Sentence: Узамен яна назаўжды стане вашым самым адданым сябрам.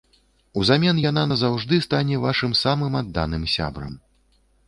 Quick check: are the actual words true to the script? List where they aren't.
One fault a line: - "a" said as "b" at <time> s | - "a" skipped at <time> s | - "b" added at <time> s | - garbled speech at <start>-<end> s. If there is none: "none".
none